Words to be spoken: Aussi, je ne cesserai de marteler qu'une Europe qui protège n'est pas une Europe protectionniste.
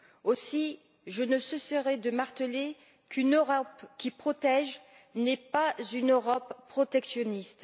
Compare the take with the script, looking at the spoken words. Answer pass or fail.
pass